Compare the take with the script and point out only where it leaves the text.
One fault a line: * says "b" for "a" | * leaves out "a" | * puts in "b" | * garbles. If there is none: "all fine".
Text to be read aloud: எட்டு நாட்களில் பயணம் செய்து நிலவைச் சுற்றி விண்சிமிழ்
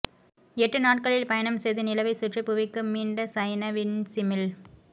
* puts in "புவிக்கு மீண்ட சைன"